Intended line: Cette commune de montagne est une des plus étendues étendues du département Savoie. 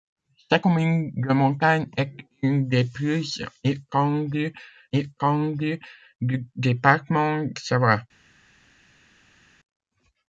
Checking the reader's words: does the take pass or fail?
pass